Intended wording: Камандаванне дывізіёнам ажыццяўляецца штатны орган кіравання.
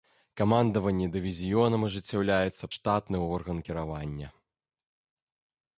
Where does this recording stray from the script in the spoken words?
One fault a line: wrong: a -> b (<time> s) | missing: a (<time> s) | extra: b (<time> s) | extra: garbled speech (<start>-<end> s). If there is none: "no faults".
no faults